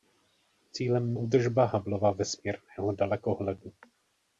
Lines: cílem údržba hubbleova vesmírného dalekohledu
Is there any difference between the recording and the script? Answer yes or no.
no